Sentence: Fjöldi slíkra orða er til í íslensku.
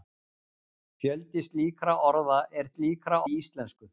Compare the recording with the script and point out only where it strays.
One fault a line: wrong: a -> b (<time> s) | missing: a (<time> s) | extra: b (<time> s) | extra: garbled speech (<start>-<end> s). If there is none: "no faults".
wrong: til -> slíkra (2.7 s)